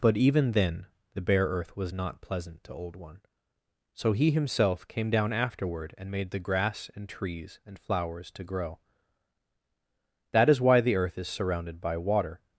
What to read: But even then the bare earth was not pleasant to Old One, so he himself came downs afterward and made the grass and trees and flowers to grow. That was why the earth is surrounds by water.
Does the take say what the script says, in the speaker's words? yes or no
no